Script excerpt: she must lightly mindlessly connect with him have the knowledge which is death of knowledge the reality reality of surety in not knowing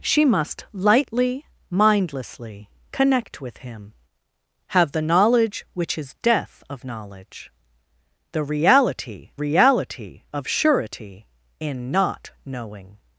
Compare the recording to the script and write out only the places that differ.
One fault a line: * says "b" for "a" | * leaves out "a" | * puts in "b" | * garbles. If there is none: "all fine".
all fine